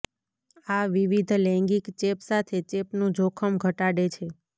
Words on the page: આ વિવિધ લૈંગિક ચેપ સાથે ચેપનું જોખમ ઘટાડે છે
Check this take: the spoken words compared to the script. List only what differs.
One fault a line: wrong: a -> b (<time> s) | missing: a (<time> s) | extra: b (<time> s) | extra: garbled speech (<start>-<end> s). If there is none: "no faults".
no faults